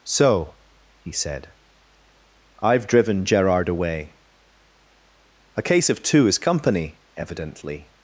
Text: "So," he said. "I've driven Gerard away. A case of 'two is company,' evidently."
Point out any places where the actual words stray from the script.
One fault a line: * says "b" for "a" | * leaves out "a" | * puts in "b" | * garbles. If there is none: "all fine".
all fine